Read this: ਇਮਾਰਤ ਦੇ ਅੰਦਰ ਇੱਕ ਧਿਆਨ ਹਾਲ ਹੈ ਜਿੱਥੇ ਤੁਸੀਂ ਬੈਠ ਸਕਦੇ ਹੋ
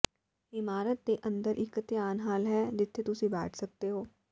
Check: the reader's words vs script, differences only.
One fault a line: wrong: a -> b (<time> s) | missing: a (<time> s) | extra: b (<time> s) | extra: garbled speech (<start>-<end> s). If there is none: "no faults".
no faults